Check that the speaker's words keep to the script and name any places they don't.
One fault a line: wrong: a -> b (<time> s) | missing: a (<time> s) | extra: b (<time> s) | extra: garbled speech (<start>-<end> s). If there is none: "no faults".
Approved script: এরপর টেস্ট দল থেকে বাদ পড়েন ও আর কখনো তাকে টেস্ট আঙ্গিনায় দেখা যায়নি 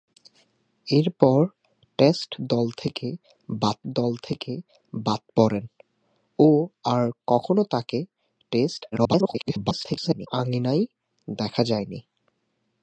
extra: দল থেকে বাদ (3.9 s)
extra: garbled speech (8.9-10.3 s)